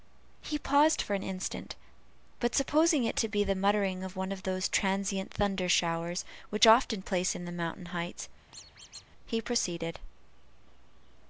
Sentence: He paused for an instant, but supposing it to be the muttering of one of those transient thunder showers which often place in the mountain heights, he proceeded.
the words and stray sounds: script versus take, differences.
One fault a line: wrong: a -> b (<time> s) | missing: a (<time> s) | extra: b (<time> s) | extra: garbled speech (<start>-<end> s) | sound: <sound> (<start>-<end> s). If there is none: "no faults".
sound: squeak (8.5-9.1 s)